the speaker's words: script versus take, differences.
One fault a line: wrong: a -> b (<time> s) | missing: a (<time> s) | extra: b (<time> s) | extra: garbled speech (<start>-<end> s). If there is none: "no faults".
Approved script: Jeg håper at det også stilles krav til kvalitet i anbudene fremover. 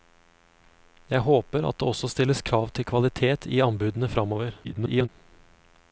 extra: garbled speech (4.6-5.1 s)